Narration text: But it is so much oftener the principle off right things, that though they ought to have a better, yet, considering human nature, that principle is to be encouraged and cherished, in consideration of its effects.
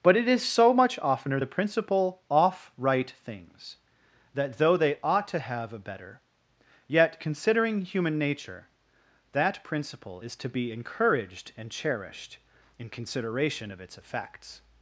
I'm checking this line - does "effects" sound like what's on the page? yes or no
yes